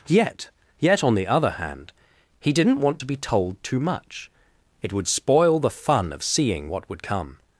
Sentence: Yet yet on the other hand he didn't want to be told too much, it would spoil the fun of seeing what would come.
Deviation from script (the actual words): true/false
false